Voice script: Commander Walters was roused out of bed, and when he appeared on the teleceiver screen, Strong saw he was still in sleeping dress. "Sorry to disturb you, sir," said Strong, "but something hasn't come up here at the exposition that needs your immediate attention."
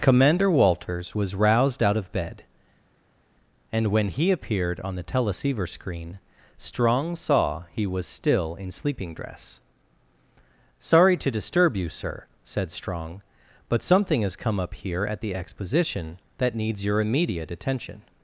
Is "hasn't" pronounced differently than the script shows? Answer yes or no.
yes